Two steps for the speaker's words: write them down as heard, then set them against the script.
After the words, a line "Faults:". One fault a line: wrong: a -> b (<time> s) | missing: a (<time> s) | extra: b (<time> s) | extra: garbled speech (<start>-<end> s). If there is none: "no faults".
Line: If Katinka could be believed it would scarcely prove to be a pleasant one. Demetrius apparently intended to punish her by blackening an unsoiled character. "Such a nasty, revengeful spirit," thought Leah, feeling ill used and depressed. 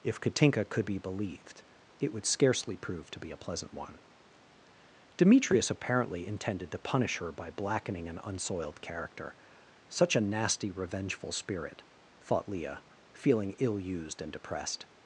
If Katinka could be believed it would scarcely prove to be a pleasant one. Demetrius apparently intended to punish her by blackening an unsoiled character. "Such a nasty, revengeful spirit," thought Leah, feeling ill used and depressed.
Faults:
no faults